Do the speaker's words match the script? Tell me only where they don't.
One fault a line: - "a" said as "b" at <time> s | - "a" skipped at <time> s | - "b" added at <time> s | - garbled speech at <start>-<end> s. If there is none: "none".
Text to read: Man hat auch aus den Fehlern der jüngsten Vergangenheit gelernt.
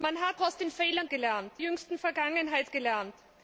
- "auch" skipped at 0.4 s
- "der" said as "gelernt" at 1.1 s